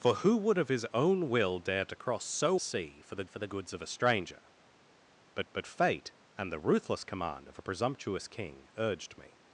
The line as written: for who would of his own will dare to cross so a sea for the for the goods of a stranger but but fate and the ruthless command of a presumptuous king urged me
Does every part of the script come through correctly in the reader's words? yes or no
yes